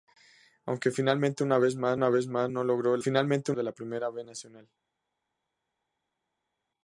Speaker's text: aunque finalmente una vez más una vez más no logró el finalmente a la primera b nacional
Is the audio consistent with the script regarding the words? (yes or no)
yes